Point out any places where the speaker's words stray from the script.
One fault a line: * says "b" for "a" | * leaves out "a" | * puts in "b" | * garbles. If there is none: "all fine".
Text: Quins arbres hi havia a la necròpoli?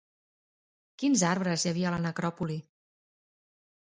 all fine